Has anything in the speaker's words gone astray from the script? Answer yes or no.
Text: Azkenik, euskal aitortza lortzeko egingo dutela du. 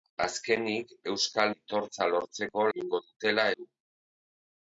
no